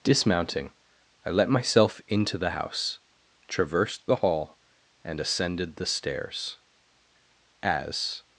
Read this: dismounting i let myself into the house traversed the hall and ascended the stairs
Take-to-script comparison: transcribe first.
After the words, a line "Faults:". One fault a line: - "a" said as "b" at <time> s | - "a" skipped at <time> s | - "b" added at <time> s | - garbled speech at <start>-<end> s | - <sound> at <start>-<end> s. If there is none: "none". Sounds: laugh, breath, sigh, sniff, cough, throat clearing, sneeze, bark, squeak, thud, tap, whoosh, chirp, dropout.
dismounting i let myself into the house traversed the hall and ascended the stairs as
Faults:
- "as" added at 7.6 s